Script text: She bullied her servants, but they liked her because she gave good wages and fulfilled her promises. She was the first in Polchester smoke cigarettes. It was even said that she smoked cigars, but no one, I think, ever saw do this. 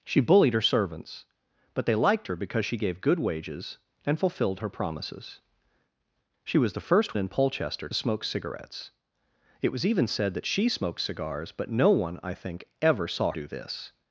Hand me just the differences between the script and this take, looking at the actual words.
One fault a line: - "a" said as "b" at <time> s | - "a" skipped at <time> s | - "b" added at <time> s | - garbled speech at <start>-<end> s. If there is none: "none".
none